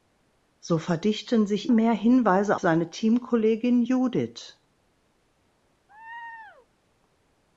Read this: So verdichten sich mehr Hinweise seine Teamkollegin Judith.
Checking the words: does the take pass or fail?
pass